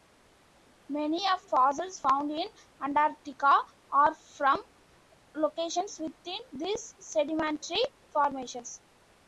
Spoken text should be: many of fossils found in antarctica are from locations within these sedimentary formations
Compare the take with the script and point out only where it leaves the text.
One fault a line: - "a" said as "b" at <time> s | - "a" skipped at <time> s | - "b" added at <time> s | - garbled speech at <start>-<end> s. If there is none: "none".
none